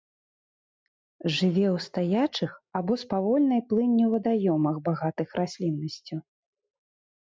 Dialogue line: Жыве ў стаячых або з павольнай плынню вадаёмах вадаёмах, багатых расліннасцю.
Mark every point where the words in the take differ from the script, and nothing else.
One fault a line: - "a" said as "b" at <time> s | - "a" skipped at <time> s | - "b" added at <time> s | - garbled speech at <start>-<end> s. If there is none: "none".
- "вадаёмах" skipped at 4.8 s